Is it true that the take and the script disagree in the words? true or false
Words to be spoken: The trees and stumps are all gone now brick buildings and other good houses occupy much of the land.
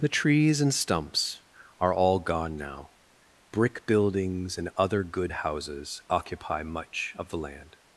false